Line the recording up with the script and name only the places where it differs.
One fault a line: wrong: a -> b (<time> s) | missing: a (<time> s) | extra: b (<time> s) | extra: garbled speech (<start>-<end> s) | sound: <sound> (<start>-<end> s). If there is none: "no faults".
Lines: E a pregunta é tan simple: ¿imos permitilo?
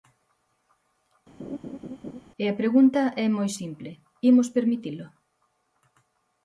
sound: laugh (1.4-2.2 s)
wrong: tan -> moi (3.4 s)